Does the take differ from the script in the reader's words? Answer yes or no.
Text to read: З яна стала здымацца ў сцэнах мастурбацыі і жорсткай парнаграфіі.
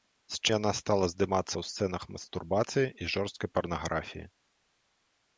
no